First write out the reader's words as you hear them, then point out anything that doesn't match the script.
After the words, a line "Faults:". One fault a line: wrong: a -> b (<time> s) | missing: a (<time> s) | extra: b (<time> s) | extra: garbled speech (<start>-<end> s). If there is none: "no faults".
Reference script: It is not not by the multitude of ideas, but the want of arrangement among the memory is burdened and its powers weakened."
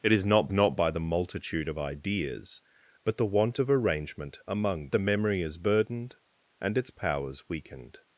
It is not not by the multitude of ideas, but the want of arrangement among the memory is burdened and its powers weakened."
Faults:
no faults